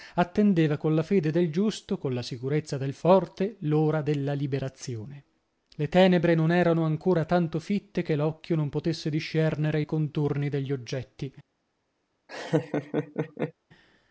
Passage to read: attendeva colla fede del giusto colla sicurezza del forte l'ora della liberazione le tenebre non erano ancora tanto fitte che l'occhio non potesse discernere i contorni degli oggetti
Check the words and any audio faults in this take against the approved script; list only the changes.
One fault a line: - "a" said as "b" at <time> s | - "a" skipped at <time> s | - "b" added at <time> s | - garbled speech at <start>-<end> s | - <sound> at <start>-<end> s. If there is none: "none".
- laugh at 12.3-13.5 s